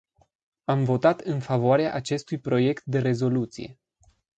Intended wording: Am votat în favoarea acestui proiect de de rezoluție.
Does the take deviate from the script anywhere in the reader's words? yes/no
yes